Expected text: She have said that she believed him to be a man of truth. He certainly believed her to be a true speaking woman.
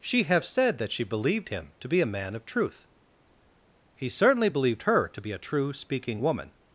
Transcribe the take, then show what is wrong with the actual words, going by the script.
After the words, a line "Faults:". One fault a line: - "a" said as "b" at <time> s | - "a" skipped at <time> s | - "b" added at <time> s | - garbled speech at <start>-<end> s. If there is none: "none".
She have said that she believed him to be a man of truth. He certainly believed her to be a true speaking woman.
Faults:
none